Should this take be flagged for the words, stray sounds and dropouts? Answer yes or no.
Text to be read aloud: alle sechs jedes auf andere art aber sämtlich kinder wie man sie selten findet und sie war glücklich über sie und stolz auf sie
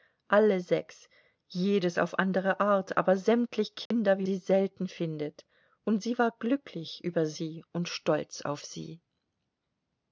yes